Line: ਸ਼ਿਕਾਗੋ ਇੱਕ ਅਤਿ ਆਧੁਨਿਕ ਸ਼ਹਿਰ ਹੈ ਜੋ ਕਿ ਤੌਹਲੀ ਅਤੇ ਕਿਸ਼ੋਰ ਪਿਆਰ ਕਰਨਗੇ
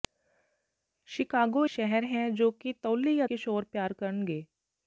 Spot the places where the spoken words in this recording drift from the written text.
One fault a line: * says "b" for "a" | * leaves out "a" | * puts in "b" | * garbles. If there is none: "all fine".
* leaves out "ਇੱਕ ਅਤਿ ਆਧੁਨਿਕ"
* leaves out "ਅਤੇ"